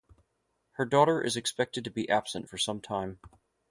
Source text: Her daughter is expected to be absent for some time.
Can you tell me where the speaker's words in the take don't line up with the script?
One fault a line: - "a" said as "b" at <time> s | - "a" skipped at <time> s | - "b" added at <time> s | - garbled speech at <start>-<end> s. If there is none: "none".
none